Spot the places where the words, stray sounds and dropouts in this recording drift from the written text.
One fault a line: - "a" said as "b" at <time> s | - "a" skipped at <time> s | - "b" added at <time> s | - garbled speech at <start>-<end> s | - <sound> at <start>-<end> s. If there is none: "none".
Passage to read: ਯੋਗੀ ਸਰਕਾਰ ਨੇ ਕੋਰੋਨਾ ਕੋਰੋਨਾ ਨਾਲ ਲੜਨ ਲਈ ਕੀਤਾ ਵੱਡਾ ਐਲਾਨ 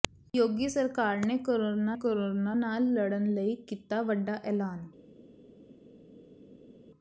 none